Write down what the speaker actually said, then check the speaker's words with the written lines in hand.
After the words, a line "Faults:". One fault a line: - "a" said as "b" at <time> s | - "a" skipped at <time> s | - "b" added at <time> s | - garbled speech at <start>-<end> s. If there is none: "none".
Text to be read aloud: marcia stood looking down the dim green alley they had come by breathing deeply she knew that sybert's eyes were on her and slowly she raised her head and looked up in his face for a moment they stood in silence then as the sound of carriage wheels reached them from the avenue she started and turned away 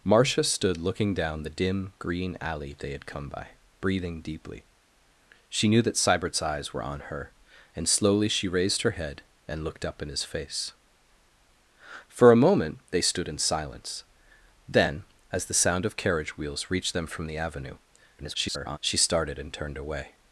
marcia stood looking down the dim green alley they had come by breathing deeply she knew that sybert's eyes were on her and slowly she raised her head and looked up in his face for a moment they stood in silence then as the sound of carriage wheels reached them from the avenue [garbled] she started and turned away
Faults:
- garbled speech at 18.2-18.8 s